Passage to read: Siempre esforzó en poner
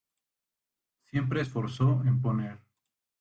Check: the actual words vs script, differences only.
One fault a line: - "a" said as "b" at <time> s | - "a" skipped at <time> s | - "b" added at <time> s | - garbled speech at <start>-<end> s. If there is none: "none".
none